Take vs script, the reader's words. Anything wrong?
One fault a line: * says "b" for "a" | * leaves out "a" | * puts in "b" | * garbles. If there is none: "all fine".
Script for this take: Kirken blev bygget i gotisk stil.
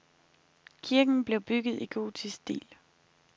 all fine